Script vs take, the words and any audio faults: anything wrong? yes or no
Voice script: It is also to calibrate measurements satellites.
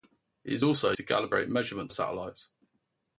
no